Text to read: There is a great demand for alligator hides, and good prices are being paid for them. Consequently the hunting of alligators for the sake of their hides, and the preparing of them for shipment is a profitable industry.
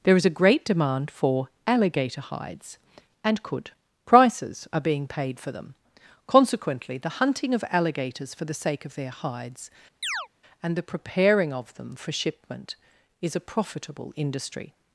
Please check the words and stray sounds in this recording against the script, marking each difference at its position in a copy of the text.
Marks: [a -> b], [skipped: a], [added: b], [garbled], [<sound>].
There is a great demand for alligator hides, and [good -> could] prices are being paid for them. Consequently the hunting of alligators for the sake of their hides, [chirp] and the preparing of them for shipment is a profitable industry.